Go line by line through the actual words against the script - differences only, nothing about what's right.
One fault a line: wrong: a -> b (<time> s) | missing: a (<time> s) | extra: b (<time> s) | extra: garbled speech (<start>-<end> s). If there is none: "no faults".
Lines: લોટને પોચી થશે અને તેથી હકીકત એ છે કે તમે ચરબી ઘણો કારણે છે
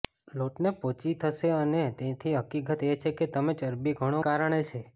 no faults